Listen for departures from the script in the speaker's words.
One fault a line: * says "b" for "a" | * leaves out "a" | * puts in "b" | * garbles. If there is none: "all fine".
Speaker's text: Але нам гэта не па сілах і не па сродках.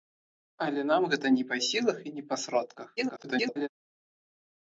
* garbles